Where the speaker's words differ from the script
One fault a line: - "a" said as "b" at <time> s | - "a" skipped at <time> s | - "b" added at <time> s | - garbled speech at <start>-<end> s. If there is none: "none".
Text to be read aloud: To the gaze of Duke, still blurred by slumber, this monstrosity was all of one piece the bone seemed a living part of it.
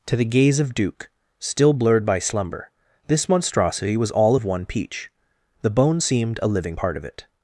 - "piece" said as "peach" at 4.6 s